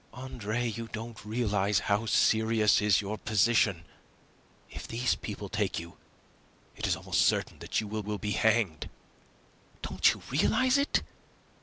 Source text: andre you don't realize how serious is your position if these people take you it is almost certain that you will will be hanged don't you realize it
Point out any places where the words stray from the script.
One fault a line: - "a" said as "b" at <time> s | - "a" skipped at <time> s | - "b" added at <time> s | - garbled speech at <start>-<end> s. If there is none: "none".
none